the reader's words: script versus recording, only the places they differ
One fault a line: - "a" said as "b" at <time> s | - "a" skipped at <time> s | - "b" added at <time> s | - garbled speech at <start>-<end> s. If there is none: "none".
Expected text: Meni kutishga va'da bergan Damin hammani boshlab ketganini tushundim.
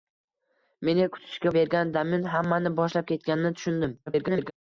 - "va'da" skipped at 1.5 s
- garbled speech at 4.1-4.5 s